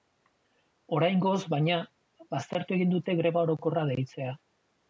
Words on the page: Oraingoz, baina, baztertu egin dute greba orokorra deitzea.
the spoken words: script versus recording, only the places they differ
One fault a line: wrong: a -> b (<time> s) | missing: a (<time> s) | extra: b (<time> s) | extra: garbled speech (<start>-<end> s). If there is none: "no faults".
no faults